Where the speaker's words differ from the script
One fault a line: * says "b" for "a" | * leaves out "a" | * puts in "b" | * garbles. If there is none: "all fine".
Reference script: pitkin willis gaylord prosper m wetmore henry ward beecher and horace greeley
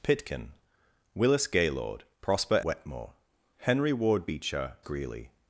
* leaves out "m"
* leaves out "and horace"